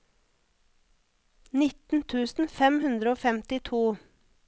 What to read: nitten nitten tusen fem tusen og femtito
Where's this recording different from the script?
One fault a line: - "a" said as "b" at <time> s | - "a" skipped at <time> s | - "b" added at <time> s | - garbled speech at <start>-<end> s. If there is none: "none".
- "nitten" skipped at 2.0 s
- "tusen" said as "hundre" at 2.9 s